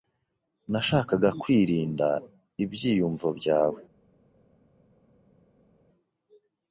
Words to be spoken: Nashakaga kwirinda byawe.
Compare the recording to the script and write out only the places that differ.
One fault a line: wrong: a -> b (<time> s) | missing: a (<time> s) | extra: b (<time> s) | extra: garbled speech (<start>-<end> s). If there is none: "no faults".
extra: ibyiyumvo (2.6 s)